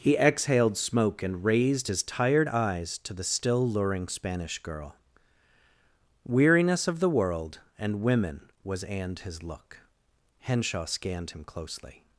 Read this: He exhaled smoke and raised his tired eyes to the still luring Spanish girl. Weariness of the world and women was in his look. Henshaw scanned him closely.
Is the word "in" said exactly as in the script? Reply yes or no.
no